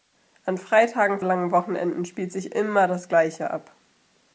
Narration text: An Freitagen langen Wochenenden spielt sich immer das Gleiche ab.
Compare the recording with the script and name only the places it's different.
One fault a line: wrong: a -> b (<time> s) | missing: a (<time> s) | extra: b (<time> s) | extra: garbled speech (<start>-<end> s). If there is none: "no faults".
no faults